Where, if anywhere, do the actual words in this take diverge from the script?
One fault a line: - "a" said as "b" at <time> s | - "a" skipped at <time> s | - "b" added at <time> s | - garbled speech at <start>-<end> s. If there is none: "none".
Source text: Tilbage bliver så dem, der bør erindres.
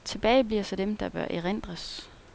none